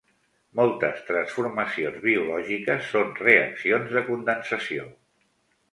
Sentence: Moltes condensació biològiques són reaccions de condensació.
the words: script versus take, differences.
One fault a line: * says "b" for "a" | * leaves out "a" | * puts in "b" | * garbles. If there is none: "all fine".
* says "transformacions" for "condensació"